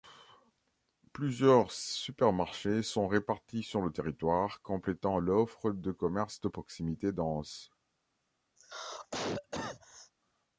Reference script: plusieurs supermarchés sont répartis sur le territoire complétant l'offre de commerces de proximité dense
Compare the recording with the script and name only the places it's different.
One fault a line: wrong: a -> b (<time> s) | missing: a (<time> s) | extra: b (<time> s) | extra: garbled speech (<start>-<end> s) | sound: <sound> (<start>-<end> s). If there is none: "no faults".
sound: cough (8.6-10.1 s)